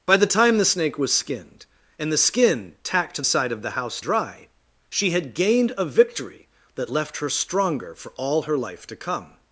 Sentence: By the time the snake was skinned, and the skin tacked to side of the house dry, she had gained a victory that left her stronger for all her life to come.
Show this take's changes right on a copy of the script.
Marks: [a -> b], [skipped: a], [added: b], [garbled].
By the time the snake was skinned, and the skin tacked to side of the house dry, she had gained a victory that left her stronger for all her life to come.